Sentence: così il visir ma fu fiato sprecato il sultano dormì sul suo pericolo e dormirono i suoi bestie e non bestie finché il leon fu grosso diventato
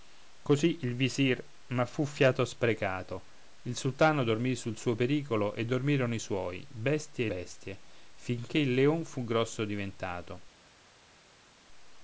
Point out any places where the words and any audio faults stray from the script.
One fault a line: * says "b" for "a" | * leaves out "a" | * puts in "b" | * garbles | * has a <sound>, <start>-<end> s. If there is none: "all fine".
* leaves out "non"